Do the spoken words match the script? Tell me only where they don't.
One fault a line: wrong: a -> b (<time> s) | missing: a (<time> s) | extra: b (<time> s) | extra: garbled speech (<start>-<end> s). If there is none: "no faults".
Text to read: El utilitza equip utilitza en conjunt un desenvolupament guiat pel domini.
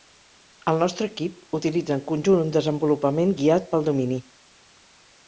wrong: utilitza -> nostre (0.8 s)